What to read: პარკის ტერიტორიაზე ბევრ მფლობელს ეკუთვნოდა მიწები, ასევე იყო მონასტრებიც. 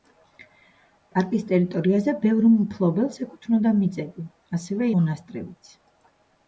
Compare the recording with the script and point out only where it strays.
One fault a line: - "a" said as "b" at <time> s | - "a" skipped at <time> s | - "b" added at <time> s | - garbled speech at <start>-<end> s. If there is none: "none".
- "იყო" skipped at 4.9 s